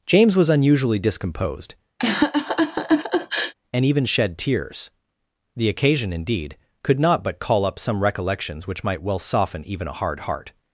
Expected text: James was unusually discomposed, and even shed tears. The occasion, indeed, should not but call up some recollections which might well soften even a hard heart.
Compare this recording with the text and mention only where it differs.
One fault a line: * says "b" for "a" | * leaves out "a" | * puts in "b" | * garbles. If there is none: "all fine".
* says "could" for "should"